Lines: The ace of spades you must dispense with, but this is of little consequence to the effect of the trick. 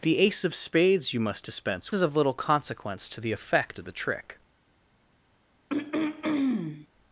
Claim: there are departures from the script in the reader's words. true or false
true